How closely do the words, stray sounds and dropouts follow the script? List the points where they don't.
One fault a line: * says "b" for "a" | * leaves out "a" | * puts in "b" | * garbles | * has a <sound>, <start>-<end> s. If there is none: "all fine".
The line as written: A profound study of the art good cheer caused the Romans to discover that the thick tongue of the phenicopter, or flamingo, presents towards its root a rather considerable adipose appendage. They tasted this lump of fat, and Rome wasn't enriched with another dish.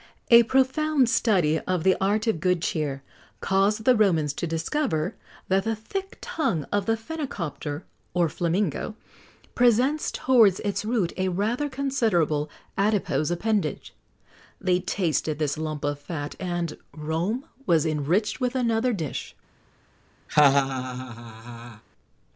* puts in "of"
* says "was" for "wasn't"
* has a laugh, 20.3-21.8 s